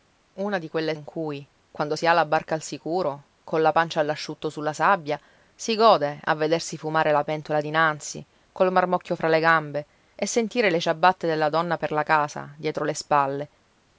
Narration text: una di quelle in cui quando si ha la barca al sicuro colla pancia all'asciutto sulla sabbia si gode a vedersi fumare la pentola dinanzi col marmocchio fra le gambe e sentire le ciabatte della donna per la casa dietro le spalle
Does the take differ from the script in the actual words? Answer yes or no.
no